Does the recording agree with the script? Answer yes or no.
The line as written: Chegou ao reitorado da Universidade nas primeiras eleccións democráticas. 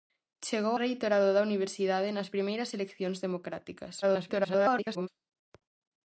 no